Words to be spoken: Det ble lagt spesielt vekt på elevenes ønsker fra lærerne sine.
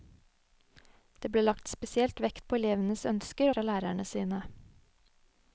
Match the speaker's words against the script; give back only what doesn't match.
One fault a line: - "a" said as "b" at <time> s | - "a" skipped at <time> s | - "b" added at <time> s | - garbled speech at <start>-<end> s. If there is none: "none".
none